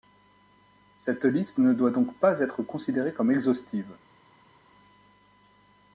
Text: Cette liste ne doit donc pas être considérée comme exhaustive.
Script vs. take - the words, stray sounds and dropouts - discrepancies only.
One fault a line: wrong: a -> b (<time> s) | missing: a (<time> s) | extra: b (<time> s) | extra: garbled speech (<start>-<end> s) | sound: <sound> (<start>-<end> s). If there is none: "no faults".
no faults